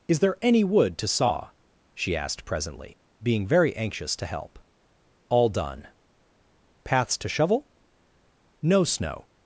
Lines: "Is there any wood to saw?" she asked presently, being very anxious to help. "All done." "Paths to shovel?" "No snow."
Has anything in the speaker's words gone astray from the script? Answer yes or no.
no